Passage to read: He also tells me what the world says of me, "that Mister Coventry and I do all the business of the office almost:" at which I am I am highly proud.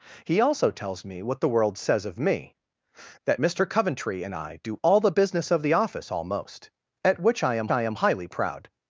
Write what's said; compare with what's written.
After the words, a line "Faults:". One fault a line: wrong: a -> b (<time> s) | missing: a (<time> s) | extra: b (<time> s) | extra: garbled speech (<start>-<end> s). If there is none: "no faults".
He also tells me what the world says of me, "that Mister Coventry and I do all the business of the office almost:" at which I am I am highly proud.
Faults:
no faults